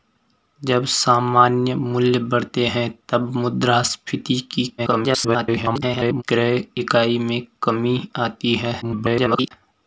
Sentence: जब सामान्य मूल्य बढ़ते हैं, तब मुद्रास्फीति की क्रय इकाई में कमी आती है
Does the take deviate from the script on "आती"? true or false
false